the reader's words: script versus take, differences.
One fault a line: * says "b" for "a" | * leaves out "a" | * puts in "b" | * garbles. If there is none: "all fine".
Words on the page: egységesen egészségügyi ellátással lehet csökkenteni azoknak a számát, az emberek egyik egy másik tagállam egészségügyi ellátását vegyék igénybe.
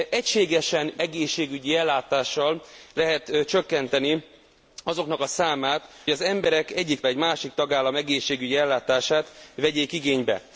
all fine